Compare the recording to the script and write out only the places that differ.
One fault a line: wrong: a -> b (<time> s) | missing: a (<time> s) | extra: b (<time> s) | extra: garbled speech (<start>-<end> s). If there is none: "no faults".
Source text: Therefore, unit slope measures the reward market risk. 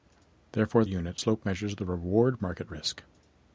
no faults